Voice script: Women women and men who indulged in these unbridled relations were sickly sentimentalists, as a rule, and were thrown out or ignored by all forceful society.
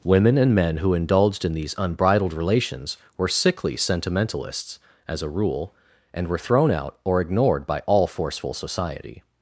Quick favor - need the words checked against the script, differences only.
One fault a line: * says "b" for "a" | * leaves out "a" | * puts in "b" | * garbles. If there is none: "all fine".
* leaves out "women"